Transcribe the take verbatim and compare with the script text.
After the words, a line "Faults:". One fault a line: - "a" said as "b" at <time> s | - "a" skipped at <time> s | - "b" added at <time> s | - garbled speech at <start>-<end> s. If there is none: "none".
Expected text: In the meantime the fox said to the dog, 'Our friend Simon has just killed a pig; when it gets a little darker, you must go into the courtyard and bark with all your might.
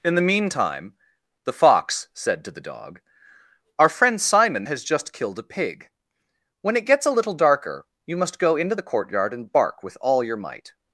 In the meantime the fox said to the dog, 'Our friend Simon has just killed a pig; when it gets a little darker, you must go into the courtyard and bark with all your might.
Faults:
none